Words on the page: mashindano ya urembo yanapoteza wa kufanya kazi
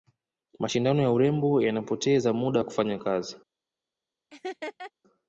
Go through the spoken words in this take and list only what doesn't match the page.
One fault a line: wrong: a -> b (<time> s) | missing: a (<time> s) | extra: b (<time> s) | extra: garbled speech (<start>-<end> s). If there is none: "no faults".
extra: muda (2.3 s)